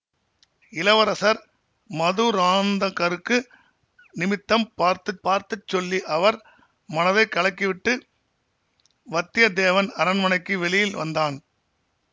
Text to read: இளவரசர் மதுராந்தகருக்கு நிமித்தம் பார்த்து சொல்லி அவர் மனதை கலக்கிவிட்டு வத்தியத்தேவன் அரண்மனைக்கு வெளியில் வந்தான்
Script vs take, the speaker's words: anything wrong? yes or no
yes